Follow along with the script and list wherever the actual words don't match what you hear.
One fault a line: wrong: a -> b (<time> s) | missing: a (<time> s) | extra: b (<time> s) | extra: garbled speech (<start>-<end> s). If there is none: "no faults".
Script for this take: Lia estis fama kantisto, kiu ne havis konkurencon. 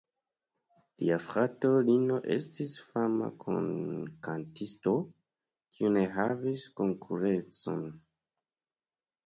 extra: frato Lino (1.2 s)